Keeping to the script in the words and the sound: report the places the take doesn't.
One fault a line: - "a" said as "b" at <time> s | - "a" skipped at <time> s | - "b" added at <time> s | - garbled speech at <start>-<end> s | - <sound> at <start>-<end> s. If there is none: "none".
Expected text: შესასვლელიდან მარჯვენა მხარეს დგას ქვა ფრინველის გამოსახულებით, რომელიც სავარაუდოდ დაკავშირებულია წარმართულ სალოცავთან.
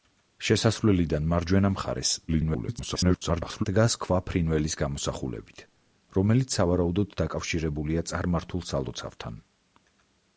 - garbled speech at 2.3-3.7 s